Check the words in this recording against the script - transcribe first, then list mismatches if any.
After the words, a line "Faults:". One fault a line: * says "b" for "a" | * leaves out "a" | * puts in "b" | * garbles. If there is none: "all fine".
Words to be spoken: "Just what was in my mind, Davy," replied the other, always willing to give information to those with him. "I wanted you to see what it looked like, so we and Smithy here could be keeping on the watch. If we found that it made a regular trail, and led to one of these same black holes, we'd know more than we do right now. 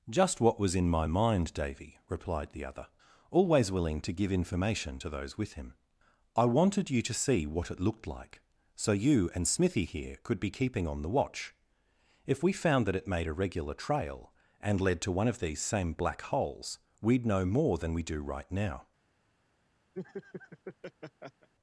"Just what was in my mind, Davy," replied the other, always willing to give information to those with him. "I wanted you to see what it looked like, so you and Smithy here could be keeping on the watch. If we found that it made a regular trail, and led to one of these same black holes, we'd know more than we do right now.
Faults:
* says "you" for "we"